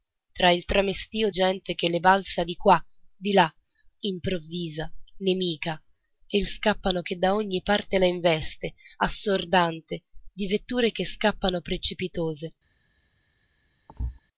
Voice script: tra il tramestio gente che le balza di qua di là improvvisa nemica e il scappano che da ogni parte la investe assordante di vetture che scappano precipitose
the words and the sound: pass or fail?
fail